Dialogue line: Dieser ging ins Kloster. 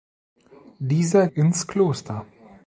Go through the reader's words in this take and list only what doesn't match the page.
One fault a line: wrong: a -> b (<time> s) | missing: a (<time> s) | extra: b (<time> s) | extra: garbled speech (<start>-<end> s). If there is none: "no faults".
missing: ging (1.3 s)